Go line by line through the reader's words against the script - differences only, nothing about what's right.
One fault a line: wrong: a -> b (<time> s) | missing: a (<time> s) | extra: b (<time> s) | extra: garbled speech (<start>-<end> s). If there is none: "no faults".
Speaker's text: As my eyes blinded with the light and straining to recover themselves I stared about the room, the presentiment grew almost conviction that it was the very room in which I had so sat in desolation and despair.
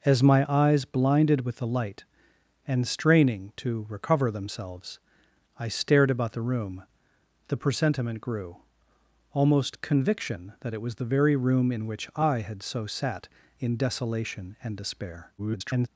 extra: garbled speech (15.4-15.9 s)